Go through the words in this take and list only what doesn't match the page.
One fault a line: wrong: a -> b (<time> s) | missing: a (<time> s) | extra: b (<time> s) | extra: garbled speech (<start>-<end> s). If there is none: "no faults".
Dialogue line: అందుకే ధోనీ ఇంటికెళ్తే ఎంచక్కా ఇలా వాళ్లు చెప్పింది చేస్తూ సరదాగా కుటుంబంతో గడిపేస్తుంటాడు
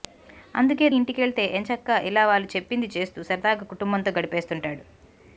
missing: ధోనీ (0.9 s)